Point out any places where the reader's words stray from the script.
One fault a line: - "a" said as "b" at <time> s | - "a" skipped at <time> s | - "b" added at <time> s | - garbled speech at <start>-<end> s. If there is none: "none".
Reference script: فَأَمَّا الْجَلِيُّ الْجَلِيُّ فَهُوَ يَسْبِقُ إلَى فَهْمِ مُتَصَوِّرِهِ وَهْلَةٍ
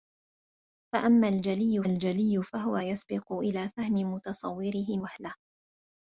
none